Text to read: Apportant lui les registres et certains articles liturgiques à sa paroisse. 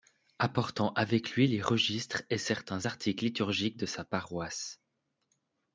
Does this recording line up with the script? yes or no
no